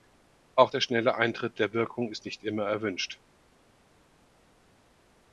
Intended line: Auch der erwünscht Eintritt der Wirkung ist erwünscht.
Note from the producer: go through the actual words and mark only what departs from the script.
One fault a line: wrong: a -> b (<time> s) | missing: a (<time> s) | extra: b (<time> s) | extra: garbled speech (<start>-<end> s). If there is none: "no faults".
wrong: erwünscht -> schnelle (0.8 s)
extra: nicht immer (2.2 s)